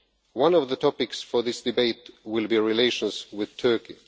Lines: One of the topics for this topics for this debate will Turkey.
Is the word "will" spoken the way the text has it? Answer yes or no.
no